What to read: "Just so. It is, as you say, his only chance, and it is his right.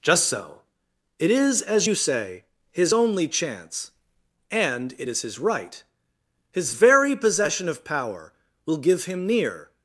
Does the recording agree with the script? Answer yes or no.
no